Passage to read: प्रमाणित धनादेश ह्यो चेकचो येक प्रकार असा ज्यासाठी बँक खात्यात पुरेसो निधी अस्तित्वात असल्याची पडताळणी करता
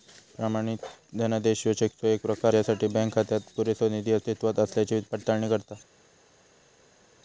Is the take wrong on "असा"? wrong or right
wrong